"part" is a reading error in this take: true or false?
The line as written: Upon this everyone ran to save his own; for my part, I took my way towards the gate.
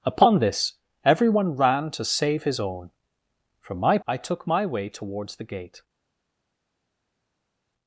true